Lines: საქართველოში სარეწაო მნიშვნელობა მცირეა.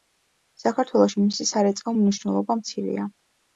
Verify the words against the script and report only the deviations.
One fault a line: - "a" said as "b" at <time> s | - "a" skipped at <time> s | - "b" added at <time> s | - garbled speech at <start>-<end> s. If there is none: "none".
- "მისი" added at 1.3 s